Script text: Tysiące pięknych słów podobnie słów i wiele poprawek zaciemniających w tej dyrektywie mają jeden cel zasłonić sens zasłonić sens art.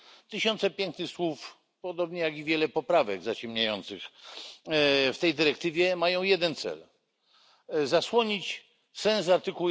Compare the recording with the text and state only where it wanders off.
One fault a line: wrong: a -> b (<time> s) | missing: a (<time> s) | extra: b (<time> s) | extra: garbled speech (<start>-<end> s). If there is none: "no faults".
wrong: słów -> jak (2.2 s)
missing: zasłonić sens (9.3 s)